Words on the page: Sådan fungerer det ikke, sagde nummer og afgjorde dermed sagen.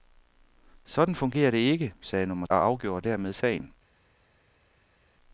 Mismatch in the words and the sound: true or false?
false